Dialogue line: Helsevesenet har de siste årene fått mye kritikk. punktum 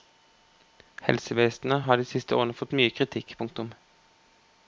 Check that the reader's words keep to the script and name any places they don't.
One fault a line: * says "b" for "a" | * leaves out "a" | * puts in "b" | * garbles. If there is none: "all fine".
all fine